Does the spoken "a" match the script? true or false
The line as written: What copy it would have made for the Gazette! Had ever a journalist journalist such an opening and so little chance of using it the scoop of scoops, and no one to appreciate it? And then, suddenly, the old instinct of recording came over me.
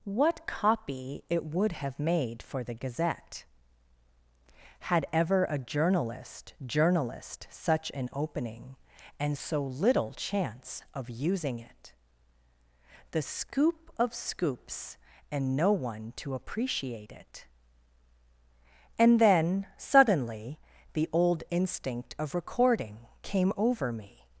true